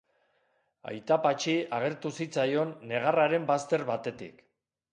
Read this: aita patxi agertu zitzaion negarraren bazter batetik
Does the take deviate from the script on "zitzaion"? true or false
false